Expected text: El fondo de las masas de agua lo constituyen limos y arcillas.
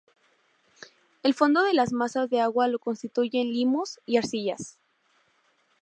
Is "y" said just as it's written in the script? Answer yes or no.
yes